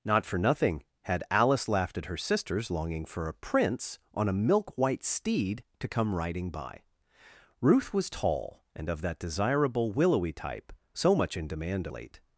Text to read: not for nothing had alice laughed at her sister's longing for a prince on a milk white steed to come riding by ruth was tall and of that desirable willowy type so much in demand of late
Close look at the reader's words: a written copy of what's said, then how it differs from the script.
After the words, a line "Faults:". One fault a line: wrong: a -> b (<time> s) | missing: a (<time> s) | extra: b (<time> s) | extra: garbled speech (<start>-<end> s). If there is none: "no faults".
not for nothing had alice laughed at her sister's longing for a prince on a milk white steed to come riding by ruth was tall and of that desirable willowy type so much in demand late
Faults:
missing: of (11.9 s)